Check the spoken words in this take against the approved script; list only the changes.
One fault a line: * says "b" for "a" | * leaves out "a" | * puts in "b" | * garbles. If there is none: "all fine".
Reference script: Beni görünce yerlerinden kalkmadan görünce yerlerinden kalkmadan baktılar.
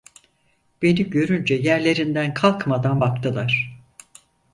* leaves out "görünce yerlerinden kalkmadan"